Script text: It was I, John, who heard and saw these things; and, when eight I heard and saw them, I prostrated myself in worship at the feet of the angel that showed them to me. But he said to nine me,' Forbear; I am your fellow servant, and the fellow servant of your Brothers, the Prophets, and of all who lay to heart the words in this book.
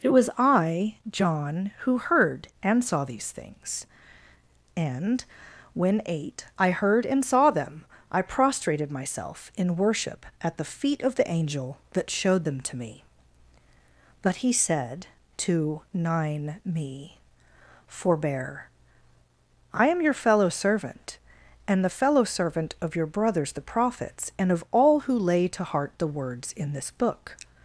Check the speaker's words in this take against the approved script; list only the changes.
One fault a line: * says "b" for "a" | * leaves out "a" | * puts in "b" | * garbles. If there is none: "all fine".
all fine